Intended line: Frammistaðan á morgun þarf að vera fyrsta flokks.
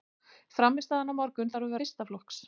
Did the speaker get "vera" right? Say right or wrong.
wrong